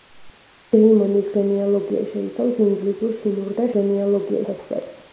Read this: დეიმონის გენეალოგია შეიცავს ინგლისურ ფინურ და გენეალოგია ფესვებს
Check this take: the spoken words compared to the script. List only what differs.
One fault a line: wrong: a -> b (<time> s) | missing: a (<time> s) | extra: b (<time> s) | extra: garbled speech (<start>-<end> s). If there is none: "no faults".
no faults